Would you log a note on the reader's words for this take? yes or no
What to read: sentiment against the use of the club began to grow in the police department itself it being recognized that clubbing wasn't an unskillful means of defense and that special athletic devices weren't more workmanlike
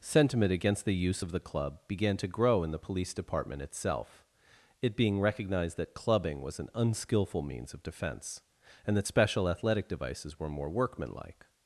yes